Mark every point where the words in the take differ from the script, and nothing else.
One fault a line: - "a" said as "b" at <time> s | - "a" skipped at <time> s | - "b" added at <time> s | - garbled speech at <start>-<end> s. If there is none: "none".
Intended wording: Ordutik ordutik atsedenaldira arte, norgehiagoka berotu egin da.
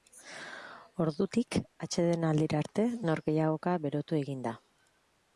- "ordutik" skipped at 1.6 s